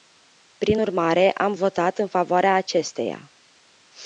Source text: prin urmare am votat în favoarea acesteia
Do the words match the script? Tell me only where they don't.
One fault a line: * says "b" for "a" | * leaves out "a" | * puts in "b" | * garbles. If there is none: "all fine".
all fine